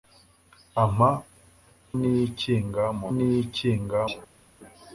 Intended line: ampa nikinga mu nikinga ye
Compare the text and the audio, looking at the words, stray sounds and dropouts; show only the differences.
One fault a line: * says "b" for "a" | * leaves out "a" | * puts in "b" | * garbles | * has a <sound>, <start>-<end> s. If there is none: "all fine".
all fine